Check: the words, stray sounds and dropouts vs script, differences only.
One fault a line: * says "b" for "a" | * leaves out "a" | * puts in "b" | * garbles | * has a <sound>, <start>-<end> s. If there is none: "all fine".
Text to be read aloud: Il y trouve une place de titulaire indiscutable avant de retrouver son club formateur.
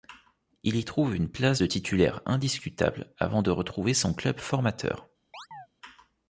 * has a chirp, 5.3-5.7 s